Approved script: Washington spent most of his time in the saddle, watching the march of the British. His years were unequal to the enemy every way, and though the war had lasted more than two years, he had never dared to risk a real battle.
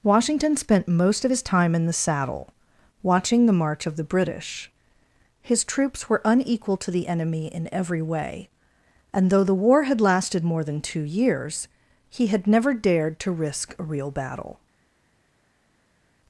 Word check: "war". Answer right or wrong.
right